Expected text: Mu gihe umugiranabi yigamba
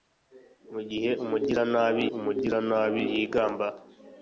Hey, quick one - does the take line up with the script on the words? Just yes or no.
no